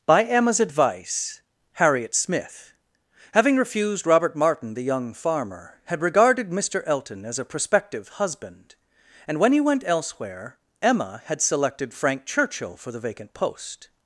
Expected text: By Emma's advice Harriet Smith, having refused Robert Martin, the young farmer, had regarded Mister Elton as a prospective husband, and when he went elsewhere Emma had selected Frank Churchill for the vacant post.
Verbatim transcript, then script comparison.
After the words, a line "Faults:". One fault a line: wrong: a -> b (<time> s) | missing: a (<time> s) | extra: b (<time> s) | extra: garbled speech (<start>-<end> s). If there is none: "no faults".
By Emma's advice Harriet Smith, having refused Robert Martin, the young farmer, had regarded Mister Elton as a prospective husband, and when he went elsewhere Emma had selected Frank Churchill for the vacant post.
Faults:
no faults